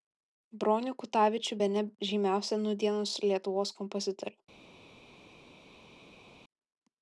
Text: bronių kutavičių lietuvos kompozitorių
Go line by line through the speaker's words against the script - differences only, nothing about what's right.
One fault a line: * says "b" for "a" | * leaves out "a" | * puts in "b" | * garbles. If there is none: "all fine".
* puts in "bene žymiausią nūdienos"